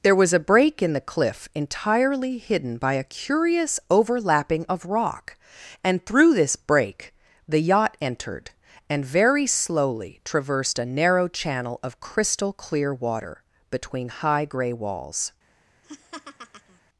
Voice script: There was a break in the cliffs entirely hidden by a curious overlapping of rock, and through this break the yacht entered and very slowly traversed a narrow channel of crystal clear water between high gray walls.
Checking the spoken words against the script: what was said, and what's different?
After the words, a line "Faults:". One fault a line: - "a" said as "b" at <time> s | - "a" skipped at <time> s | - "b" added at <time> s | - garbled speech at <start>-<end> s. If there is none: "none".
There was a break in the cliff entirely hidden by a curious overlapping of rock, and through this break the yacht entered and very slowly traversed a narrow channel of crystal clear water between high gray walls.
Faults:
- "cliffs" said as "cliff" at 1.1 s